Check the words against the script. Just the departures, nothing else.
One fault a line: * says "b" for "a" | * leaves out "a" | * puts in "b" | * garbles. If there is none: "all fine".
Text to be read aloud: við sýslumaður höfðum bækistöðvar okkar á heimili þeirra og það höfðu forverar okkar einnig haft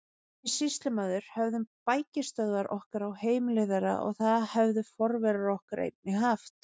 all fine